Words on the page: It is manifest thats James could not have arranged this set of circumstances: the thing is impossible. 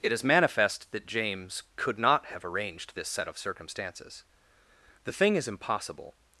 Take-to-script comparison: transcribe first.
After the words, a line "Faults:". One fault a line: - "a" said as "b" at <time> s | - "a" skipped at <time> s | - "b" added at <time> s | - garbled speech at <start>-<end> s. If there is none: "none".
It is manifest that James could not have arranged this set of circumstances: the thing is impossible.
Faults:
- "thats" said as "that" at 0.9 s